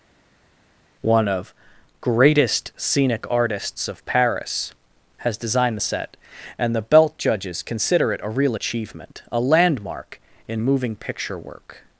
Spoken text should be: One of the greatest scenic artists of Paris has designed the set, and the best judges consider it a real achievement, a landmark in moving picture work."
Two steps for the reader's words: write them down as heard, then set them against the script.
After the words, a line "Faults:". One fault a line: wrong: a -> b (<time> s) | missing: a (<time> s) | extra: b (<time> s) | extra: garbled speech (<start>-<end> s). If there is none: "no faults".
One of greatest scenic artists of Paris has designed the set, and the belt judges consider it a real achievement, a landmark in moving picture work."
Faults:
missing: the (1.5 s)
wrong: best -> belt (6.8 s)